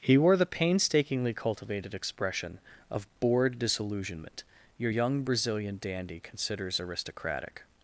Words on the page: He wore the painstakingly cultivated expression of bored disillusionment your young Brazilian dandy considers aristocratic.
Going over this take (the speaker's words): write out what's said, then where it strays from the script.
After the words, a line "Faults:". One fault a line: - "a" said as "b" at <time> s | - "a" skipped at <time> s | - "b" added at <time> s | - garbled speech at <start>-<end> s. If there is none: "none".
He wore the painstakingly cultivated expression of bored disillusionment your young Brazilian dandy considers aristocratic.
Faults:
none